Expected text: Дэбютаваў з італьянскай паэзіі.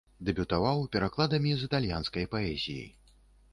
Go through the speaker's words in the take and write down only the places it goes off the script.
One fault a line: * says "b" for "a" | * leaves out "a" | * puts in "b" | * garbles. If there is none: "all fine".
* puts in "перакладамі"